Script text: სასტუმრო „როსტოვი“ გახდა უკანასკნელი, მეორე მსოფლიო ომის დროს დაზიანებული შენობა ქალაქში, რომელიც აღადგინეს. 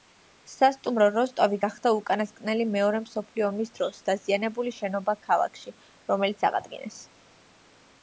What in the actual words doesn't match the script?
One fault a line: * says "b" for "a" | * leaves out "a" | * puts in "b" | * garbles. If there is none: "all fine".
all fine